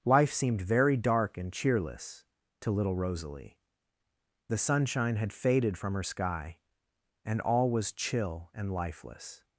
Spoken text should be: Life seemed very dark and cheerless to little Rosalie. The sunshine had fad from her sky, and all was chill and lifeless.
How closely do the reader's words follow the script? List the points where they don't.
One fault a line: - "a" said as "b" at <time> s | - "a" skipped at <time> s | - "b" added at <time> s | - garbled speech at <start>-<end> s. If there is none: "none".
- "fad" said as "faded" at 5.3 s